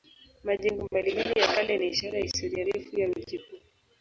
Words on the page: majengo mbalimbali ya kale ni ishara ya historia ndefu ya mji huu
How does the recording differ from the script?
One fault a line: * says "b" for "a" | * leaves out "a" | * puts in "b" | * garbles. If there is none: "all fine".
all fine